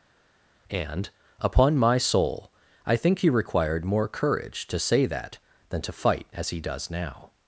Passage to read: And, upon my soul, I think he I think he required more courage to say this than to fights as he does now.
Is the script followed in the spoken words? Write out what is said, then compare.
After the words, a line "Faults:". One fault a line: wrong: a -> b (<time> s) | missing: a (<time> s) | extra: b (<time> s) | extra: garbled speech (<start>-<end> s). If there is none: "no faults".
And, upon my soul, I think he required more courage to say that than to fight as he does now.
Faults:
missing: I think he (3.3 s)
wrong: this -> that (5.1 s)
wrong: fights -> fight (5.9 s)